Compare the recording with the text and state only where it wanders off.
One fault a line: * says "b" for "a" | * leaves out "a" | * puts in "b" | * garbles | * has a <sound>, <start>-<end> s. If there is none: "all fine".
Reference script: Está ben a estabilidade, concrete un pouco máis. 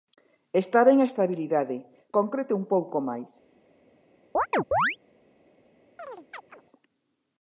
* has a chirp, 4.3-5.0 s
* has a chirp, 6.0-6.6 s